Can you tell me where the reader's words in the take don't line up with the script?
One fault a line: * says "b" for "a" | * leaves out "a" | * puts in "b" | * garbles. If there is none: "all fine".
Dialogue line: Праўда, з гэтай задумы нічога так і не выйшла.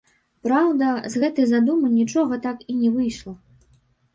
all fine